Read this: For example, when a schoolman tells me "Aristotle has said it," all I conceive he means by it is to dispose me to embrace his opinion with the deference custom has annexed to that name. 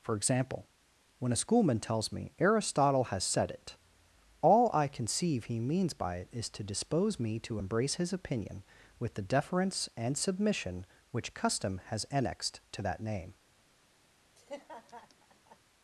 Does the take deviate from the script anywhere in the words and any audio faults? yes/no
yes